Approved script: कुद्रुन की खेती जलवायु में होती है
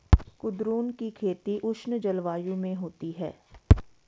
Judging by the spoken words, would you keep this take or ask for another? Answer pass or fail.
fail